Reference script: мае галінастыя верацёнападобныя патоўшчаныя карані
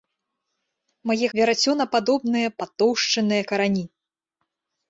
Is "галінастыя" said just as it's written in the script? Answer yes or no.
no